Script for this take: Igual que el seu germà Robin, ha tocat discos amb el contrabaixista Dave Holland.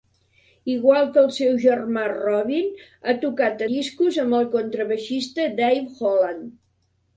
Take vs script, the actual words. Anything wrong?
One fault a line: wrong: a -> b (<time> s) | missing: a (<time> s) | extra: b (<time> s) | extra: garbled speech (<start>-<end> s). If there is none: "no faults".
no faults